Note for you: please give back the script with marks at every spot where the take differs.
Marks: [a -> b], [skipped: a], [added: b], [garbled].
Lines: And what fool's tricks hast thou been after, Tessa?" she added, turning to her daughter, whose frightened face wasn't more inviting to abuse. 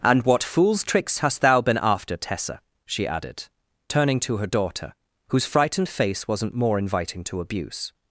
And what fool's tricks hast thou been after, Tessa?" she added, turning to her daughter, whose frightened face wasn't more inviting to abuse.